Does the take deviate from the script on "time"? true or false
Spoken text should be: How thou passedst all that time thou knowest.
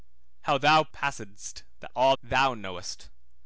true